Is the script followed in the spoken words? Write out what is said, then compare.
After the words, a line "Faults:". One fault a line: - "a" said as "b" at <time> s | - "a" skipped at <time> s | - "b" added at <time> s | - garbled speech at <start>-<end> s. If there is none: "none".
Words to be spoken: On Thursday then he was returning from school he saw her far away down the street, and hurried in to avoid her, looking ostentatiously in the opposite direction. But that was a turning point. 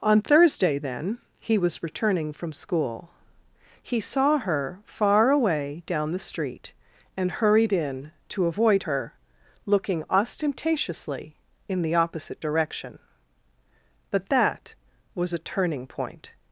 On Thursday then he was returning from school he saw her far away down the street, and hurried in to avoid her, looking ostentatiously in the opposite direction. But that was a turning point.
Faults:
none